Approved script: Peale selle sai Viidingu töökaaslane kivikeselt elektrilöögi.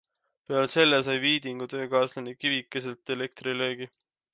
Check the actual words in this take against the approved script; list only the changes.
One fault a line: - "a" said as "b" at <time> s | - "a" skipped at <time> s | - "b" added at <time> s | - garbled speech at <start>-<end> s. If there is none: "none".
none